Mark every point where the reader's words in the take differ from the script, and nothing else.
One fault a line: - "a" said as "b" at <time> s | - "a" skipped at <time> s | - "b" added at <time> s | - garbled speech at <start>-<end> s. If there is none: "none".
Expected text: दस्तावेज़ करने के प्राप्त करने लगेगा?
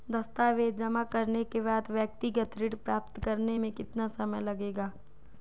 - "जमा" added at 0.8 s
- "बाद व्यक्तिगत ऋण" added at 1.6 s
- "में कितना समय" added at 3.6 s